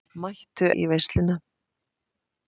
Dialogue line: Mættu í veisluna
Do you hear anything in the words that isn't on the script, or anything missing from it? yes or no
no